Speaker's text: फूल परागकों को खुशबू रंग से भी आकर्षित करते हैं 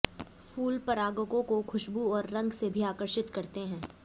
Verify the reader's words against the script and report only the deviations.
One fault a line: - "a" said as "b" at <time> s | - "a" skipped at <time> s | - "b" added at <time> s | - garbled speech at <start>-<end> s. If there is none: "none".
- "और" added at 2.1 s